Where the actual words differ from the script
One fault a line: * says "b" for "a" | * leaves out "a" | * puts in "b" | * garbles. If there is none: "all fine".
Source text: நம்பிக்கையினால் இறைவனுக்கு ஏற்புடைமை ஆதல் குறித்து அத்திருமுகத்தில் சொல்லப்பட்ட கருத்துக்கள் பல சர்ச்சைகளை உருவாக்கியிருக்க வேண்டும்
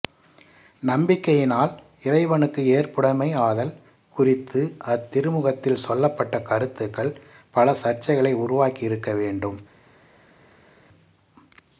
all fine